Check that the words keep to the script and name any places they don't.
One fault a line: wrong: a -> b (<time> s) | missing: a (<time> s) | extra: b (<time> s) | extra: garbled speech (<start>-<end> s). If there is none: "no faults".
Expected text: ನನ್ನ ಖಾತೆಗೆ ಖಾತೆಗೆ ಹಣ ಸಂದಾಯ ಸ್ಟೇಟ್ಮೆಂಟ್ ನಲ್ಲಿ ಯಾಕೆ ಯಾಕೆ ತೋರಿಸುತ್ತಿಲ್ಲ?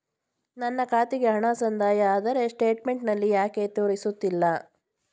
missing: ಖಾತೆಗೆ (1.3 s)
extra: ಆದರೆ (2.1 s)
missing: ಯಾಕೆ (3.7 s)